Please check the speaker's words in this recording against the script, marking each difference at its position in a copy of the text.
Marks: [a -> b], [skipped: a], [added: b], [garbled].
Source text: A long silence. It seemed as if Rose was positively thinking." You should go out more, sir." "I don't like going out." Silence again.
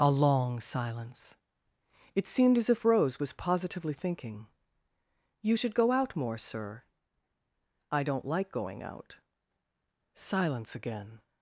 A long silence. It seemed as if Rose was positively thinking." You should go out more, sir." "I don't like going out." Silence again.